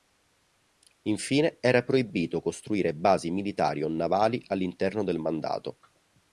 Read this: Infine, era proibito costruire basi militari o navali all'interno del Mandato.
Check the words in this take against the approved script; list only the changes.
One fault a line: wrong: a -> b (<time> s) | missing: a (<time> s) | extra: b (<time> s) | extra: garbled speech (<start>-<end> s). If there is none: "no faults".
no faults